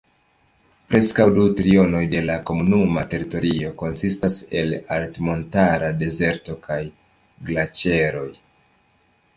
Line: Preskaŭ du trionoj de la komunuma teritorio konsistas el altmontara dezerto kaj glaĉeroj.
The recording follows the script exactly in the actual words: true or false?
true